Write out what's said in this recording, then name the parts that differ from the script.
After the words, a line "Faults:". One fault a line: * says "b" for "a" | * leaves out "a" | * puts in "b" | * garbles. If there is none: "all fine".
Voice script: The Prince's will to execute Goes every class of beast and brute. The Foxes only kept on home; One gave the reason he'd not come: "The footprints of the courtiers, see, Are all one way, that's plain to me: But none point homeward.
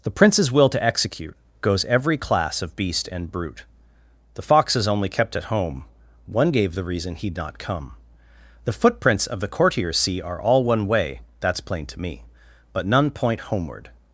The Prince's will to execute Goes every class of beast and brute. The Foxes only kept at home; One gave the reason he'd not come: "The footprints of the courtiers, see, Are all one way, that's plain to me: But none point homeward.
Faults:
* says "at" for "on"